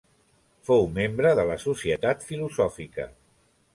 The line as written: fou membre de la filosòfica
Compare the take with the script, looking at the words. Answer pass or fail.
fail